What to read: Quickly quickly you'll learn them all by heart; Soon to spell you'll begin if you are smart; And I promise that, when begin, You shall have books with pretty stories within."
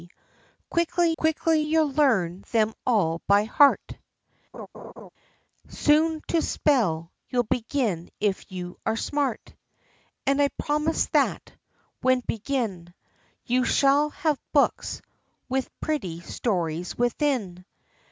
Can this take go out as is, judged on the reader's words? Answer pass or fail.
pass